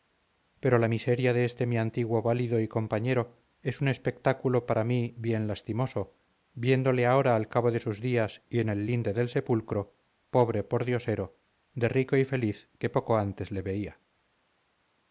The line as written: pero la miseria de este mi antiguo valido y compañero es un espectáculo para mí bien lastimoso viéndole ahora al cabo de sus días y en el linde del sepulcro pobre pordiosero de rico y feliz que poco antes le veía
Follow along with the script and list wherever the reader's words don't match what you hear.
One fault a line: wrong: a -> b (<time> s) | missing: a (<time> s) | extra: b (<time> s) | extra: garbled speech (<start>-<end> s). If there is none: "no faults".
no faults